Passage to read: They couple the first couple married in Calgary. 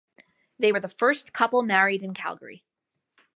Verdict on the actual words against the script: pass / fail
fail